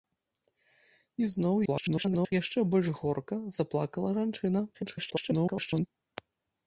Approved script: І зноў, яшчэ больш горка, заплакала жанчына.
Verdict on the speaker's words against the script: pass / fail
fail